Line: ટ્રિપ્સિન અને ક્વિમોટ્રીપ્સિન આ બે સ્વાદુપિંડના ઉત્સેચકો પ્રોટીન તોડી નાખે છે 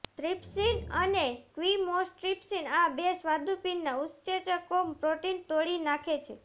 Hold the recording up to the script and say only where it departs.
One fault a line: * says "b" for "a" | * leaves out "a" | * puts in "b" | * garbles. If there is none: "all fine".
all fine